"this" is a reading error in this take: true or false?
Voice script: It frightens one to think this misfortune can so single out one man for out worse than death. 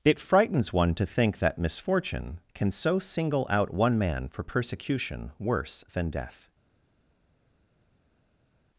true